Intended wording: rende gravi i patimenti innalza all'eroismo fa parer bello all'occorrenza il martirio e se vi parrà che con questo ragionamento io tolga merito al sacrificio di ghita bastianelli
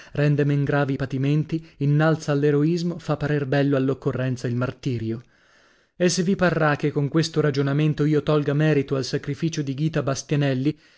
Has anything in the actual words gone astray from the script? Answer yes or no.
yes